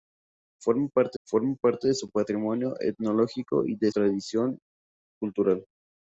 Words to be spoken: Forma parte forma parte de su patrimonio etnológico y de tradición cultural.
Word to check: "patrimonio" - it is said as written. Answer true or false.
true